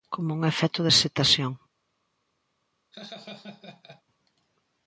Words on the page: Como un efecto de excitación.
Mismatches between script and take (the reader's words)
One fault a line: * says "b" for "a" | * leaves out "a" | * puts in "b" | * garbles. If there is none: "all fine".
all fine